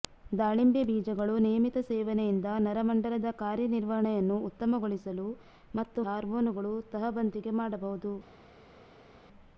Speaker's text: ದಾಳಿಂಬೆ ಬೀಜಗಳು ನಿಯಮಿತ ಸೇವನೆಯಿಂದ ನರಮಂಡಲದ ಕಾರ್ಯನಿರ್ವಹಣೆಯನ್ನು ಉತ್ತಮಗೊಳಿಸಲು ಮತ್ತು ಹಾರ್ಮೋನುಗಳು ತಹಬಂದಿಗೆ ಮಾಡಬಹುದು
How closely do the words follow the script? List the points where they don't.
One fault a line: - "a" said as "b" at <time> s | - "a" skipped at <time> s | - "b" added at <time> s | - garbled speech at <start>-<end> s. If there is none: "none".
none